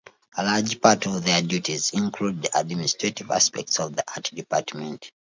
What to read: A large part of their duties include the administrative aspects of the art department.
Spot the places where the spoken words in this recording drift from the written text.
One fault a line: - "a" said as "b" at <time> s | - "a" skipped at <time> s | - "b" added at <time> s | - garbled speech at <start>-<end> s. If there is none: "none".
none